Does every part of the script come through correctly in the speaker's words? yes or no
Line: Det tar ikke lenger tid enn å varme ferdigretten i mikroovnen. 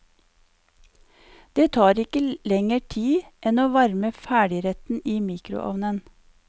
yes